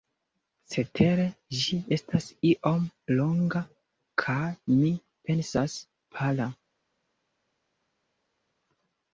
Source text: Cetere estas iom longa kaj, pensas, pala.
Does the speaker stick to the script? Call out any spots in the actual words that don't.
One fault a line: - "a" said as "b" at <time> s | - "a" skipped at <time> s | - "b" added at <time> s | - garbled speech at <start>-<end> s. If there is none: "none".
- "ĝi" added at 1.6 s
- "mi" added at 4.8 s